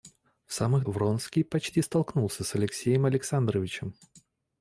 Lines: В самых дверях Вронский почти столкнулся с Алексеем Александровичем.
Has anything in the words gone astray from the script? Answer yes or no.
yes